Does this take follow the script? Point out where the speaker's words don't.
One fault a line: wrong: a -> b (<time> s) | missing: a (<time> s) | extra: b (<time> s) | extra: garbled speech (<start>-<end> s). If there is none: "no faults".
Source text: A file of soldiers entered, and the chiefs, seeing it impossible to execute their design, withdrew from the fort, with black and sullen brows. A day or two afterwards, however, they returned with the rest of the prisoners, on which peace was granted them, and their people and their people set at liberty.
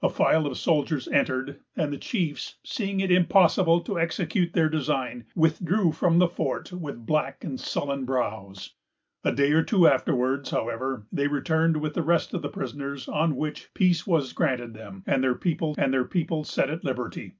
no faults